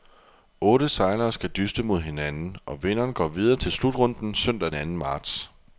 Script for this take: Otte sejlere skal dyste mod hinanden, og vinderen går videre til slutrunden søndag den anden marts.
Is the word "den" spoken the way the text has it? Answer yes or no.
no